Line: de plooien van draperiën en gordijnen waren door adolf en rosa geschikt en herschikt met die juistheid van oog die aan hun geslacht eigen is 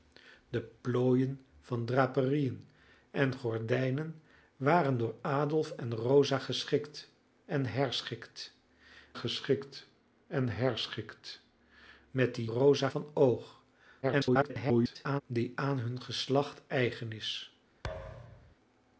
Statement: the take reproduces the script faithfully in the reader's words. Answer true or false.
false